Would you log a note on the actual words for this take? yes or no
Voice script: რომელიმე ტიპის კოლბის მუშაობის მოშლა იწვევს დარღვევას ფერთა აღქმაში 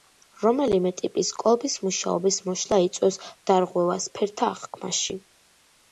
no